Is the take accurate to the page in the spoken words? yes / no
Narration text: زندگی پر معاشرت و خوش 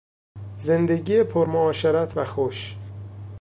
yes